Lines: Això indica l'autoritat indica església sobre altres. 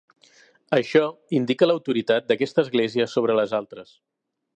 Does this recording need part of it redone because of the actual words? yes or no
yes